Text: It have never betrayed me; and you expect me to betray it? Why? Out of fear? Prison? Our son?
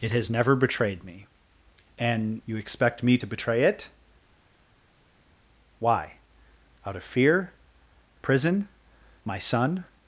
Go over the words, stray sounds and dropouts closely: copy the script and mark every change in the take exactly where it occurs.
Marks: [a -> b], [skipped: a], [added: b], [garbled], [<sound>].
It [have -> has] never betrayed me; and you expect me to betray it? Why? Out of fear? Prison? [Our -> My] son?